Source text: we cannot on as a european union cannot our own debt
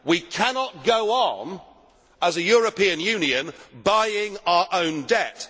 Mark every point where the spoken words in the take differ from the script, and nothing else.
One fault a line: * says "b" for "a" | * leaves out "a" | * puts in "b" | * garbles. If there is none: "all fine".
* puts in "go"
* says "buying" for "cannot"